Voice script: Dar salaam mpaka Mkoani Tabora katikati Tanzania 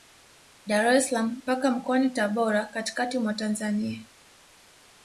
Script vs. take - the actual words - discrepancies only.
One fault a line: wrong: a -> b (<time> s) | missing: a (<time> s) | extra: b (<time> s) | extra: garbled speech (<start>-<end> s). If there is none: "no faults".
extra: es (0.9 s)
extra: mwa (3.2 s)